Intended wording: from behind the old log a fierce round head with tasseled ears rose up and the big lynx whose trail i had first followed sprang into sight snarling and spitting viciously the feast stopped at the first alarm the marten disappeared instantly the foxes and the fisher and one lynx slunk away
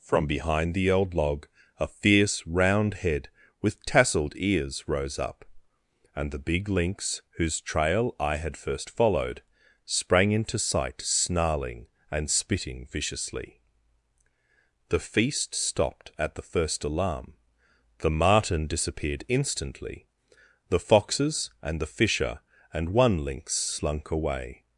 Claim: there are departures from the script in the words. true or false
false